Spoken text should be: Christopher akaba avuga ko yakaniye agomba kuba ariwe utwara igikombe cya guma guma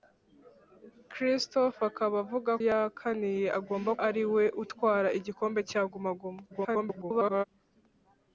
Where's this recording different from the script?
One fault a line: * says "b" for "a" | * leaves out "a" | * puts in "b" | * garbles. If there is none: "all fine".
* leaves out "ko"
* leaves out "kuba"
* garbles